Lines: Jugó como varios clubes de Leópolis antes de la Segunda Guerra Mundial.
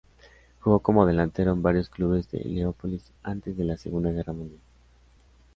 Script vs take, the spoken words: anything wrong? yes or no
yes